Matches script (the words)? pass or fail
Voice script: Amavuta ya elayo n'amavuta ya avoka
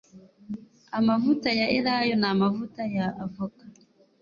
pass